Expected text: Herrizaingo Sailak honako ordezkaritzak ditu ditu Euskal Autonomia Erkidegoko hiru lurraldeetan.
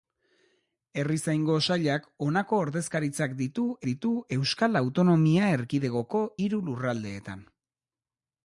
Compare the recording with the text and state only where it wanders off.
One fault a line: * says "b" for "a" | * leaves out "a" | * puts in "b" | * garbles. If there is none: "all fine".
all fine